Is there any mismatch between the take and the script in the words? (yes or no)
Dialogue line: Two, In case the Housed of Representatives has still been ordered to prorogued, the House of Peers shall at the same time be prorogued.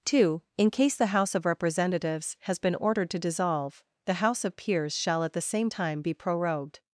yes